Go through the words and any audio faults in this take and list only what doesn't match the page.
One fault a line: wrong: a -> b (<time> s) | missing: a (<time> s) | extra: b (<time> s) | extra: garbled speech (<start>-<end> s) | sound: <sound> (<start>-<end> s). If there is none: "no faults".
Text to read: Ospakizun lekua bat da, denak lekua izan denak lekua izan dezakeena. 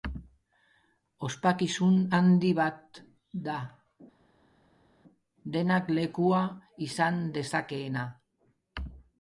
wrong: lekua -> handi (2.2 s)
missing: denak lekua izan (7.2 s)